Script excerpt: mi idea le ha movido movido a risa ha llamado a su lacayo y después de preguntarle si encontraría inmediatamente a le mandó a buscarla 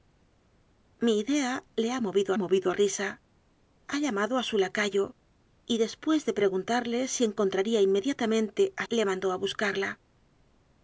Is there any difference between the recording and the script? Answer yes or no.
no